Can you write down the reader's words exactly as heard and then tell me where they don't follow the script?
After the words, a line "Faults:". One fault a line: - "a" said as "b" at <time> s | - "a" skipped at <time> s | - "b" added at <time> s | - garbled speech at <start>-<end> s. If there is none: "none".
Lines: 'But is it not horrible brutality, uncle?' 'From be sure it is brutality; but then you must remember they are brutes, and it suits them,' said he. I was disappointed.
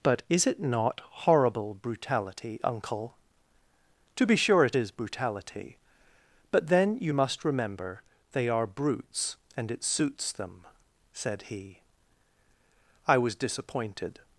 'But is it not horrible brutality, uncle?' 'To be sure it is brutality; but then you must remember they are brutes, and it suits them,' said he. I was disappointed.
Faults:
- "From" said as "To" at 4.1 s